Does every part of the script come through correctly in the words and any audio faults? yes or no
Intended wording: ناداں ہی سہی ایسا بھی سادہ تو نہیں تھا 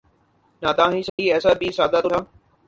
no